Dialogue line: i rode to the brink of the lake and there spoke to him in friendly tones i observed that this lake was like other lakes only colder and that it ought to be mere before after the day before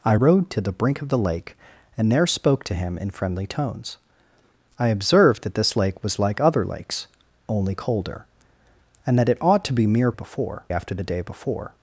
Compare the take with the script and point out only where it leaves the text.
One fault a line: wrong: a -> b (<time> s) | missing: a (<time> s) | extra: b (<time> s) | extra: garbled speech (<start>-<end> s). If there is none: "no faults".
no faults